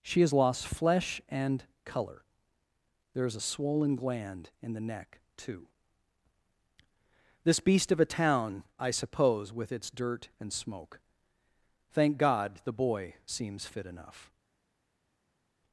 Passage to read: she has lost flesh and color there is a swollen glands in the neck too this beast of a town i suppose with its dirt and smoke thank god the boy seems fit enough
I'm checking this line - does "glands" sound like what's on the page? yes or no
no